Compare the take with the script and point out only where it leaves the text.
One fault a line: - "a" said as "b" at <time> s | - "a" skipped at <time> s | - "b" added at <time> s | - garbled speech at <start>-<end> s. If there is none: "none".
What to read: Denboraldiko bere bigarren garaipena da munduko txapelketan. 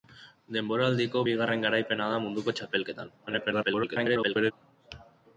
- "bere" skipped at 1.2 s
- garbled speech at 3.3-4.5 s